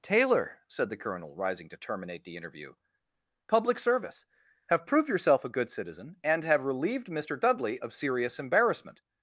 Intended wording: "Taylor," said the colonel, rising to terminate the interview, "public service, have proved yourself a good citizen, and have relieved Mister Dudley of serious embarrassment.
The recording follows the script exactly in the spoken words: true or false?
true